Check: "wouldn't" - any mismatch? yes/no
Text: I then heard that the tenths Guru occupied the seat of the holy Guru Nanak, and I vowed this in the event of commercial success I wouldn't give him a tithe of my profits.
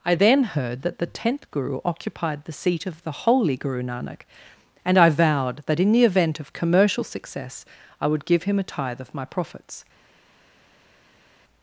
yes